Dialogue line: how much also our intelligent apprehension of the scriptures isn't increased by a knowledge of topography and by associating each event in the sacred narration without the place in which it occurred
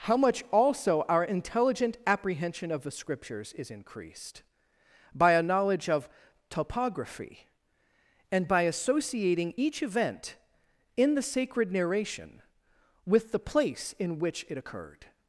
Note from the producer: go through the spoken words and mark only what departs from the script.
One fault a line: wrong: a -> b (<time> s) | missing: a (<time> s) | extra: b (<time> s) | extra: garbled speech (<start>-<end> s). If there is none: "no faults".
wrong: isn't -> is (3.5 s)
wrong: without -> with (13.1 s)